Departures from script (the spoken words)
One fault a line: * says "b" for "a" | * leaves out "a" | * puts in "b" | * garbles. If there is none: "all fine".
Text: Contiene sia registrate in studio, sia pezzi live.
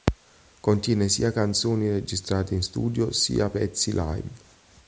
* puts in "canzoni"